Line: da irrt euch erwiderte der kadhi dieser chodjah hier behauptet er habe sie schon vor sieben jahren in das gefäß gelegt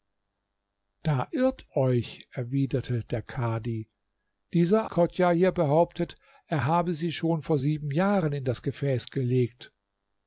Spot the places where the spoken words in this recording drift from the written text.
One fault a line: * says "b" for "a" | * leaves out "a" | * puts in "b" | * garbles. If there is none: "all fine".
all fine